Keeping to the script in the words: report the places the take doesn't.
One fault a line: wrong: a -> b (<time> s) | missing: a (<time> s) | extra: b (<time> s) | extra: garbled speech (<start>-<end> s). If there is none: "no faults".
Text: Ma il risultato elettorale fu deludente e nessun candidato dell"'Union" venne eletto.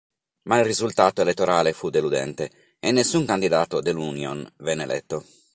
no faults